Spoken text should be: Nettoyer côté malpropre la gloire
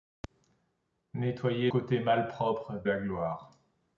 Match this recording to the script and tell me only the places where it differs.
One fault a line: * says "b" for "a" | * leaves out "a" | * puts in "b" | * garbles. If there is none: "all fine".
all fine